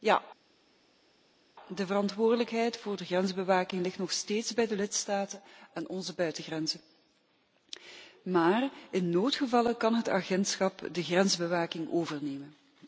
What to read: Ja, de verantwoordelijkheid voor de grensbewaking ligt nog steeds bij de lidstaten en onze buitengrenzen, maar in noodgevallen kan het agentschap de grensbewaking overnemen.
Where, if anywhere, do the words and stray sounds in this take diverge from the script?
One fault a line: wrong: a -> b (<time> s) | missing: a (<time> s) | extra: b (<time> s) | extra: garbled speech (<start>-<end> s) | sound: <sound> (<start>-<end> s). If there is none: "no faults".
no faults